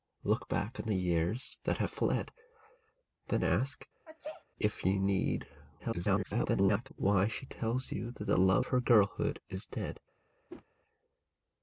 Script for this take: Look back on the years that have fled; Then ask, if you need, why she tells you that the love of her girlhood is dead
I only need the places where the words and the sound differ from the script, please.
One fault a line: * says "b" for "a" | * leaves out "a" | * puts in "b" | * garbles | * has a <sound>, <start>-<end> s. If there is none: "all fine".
* has a sneeze, 4.0-4.4 s
* garbles
* leaves out "of"
* has a whoosh, 10.5-10.7 s